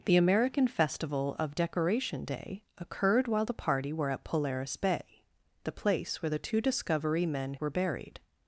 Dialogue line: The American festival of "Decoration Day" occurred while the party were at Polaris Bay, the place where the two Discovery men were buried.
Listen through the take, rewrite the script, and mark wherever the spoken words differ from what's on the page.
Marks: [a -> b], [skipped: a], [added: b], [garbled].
The American festival of "Decoration Day" occurred while the party were at Polaris Bay, the place where the two Discovery men were buried.